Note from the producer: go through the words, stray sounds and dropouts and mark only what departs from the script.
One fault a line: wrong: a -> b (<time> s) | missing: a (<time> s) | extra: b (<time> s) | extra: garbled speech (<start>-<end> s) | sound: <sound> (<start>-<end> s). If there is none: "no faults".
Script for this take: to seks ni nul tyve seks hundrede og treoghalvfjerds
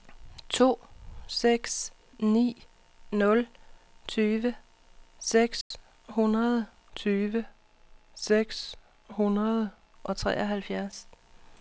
sound: dropout (5.6-5.7 s)
extra: tyve seks hundrede (7.0 s)